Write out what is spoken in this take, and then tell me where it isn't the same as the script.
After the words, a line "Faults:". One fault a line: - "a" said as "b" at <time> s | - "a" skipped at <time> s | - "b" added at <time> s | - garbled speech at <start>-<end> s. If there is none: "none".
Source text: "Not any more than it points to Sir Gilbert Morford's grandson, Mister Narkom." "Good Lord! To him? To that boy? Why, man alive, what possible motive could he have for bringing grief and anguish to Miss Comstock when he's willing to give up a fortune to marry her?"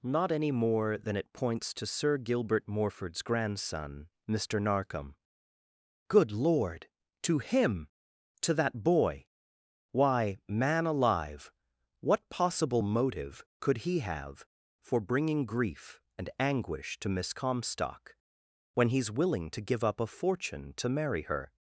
"Not any more than it points to Sir Gilbert Morford's grandson, Mister Narkom." "Good Lord! To him? To that boy? Why, man alive, what possible motive could he have for bringing grief and anguish to Miss Comstock when he's willing to give up a fortune to marry her?"
Faults:
none